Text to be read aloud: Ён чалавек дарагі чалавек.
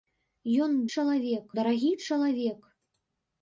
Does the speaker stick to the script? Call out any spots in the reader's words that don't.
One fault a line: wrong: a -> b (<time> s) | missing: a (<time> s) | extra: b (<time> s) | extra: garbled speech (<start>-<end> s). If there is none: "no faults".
no faults